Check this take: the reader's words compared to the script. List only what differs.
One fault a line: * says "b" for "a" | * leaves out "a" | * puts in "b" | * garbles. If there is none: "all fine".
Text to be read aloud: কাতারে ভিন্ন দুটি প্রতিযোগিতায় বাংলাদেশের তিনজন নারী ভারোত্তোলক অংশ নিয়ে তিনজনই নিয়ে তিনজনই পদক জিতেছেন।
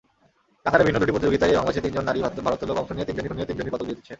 all fine